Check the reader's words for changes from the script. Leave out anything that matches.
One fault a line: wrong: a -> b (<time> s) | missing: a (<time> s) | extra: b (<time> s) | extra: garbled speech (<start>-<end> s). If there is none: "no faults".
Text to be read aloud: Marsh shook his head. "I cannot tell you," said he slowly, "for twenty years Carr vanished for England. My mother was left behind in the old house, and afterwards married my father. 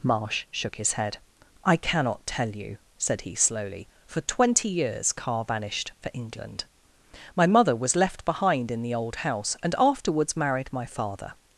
no faults